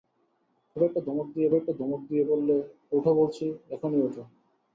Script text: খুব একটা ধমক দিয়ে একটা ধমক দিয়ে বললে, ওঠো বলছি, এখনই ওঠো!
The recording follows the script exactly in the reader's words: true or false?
true